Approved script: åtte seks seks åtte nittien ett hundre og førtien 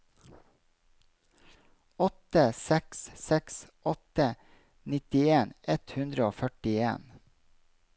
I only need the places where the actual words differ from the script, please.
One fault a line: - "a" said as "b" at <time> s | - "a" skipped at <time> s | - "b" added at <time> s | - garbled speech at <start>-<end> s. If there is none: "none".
none